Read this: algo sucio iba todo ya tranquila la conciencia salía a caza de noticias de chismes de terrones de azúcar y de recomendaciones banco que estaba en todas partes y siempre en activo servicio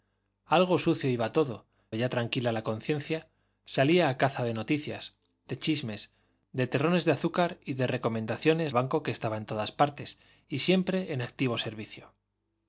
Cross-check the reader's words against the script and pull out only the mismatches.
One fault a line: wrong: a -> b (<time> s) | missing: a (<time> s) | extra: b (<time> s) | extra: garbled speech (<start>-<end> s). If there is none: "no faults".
no faults